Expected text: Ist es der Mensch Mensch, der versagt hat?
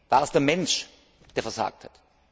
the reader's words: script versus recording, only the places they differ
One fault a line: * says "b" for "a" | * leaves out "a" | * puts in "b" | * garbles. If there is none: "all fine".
* says "War" for "Ist"
* leaves out "Mensch"